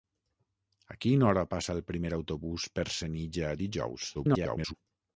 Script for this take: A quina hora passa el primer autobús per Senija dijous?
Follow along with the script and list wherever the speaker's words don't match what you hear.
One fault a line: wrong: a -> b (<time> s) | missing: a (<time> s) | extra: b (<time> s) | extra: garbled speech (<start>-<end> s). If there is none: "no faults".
extra: garbled speech (4.1-4.7 s)